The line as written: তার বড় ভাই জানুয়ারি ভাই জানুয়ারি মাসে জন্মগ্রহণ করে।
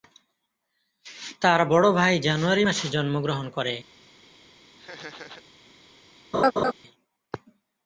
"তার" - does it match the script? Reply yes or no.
yes